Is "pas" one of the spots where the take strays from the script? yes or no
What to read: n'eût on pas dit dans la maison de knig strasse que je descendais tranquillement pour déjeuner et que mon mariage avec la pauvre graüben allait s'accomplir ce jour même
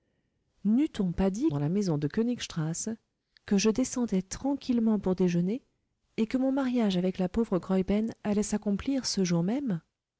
no